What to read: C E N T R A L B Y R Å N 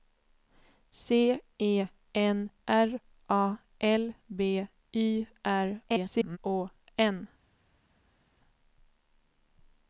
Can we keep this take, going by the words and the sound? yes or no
no